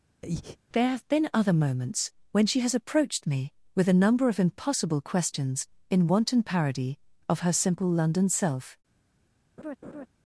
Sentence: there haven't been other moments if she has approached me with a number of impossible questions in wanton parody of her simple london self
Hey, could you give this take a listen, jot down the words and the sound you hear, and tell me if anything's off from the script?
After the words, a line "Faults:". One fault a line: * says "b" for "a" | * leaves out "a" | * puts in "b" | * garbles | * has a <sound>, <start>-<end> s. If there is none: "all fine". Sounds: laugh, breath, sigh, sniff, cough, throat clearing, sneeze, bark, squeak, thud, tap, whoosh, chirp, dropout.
there have been other moments when she has approached me with a number of impossible questions in wanton parody of her simple london self
Faults:
* has a breath, 0.2-0.6 s
* says "have" for "haven't"
* says "when" for "if"
* has a laugh, 9.6-10.1 s